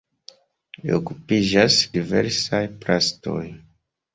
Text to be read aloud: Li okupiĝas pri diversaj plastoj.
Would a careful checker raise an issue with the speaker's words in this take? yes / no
yes